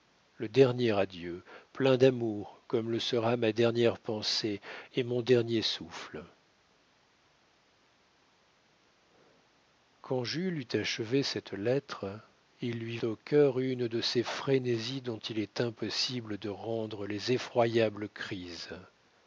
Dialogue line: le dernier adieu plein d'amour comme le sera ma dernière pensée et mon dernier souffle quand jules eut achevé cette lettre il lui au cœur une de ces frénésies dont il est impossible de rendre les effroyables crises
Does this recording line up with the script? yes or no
yes